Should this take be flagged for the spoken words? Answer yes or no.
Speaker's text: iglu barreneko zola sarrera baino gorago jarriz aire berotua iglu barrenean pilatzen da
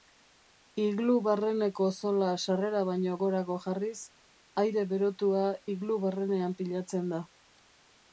no